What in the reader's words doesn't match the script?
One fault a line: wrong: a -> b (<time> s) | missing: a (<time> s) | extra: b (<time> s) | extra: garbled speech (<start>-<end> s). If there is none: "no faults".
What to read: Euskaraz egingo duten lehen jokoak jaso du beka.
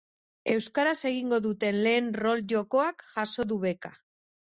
extra: rol (2.2 s)